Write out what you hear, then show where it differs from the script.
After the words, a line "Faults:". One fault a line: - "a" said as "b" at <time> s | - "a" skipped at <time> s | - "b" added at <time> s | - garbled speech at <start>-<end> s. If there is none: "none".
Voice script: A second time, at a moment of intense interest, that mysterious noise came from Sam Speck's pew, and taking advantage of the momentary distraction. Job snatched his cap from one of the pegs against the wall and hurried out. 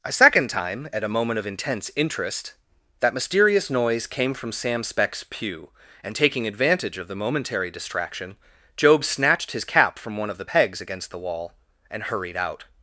A second time, at a moment of intense interest, that mysterious noise came from Sam Speck's pew, and taking advantage of the momentary distraction. Job snatched his cap from one of the pegs against the wall and hurried out.
Faults:
none